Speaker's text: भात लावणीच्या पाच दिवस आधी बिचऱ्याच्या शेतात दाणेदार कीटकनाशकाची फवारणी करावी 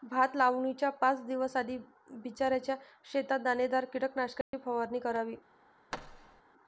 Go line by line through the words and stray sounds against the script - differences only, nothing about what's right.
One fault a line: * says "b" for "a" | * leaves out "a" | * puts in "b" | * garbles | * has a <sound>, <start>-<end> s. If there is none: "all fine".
* has a dropout, 4.4-4.5 s
* has a thud, 5.9-6.4 s